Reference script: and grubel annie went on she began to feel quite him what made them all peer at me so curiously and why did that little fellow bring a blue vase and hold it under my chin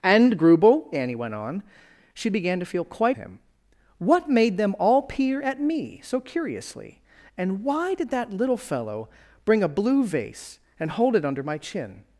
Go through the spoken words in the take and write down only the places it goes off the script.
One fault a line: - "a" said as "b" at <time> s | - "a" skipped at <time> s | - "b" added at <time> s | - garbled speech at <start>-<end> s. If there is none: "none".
none